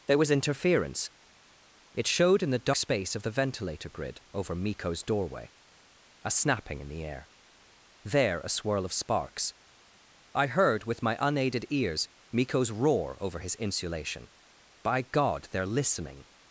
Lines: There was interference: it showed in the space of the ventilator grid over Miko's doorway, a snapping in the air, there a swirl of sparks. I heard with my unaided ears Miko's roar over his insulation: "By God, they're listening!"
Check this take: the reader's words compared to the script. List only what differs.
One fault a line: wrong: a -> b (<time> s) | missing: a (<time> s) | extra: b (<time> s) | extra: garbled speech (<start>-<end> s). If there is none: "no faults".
no faults